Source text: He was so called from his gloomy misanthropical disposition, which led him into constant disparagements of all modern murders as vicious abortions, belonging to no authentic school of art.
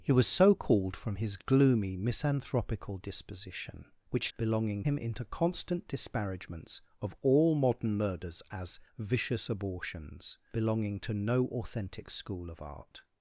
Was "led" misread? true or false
true